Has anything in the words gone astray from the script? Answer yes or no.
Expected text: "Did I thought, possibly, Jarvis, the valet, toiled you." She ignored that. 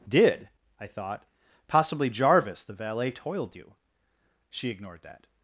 no